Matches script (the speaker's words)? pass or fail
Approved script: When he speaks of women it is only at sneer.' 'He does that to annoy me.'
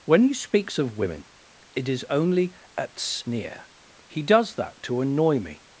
pass